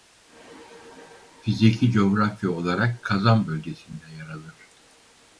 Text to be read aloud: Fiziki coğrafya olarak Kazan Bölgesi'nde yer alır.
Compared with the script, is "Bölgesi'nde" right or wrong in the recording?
right